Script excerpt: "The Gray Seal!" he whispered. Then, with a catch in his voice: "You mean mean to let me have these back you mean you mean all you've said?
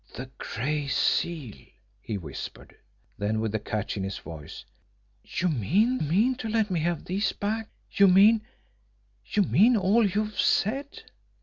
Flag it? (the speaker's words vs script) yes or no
no